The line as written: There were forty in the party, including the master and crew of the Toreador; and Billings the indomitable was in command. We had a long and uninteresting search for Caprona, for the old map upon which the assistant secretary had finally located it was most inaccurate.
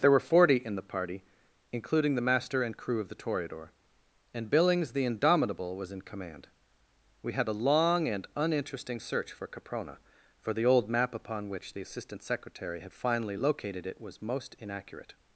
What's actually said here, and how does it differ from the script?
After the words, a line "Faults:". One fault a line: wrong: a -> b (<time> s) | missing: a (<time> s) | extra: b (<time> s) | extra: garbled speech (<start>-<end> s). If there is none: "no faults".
There were forty in the party, including the master and crew of the Toreador; and Billings the indomitable was in command. We had a long and uninteresting search for Caprona, for the old map upon which the assistant secretary had finally located it was most inaccurate.
Faults:
no faults